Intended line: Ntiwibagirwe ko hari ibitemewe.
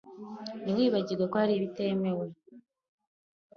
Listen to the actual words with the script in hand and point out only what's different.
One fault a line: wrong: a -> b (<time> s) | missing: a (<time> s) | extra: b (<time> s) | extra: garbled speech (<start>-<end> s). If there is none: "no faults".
no faults